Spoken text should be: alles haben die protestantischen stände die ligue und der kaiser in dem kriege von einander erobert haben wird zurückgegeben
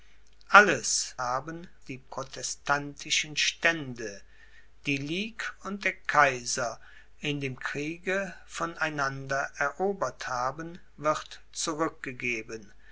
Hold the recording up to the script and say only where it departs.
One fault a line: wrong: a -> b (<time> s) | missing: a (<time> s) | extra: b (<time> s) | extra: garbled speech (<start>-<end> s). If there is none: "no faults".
no faults